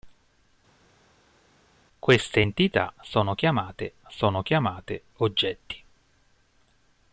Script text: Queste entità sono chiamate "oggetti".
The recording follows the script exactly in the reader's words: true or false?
false